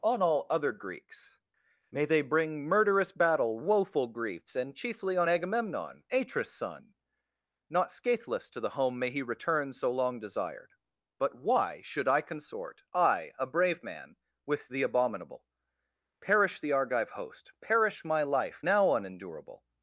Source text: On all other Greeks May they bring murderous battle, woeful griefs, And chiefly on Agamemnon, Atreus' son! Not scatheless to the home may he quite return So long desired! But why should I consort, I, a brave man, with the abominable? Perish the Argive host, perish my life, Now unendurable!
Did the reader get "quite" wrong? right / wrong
wrong